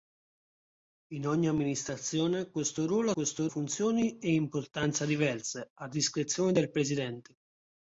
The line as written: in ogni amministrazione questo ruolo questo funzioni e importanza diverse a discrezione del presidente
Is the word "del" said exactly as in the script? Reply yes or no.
yes